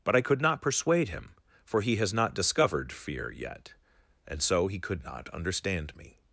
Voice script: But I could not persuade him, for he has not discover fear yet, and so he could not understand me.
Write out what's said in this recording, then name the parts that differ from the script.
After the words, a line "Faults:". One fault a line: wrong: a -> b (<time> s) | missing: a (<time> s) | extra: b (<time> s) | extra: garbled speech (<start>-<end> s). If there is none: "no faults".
But I could not persuade him, for he has not discovered fear yet, and so he could not understand me.
Faults:
wrong: discover -> discovered (2.3 s)